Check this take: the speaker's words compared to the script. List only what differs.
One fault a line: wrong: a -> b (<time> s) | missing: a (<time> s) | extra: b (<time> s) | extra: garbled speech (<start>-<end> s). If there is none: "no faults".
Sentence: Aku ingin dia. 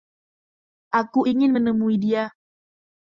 extra: menemui (1.5 s)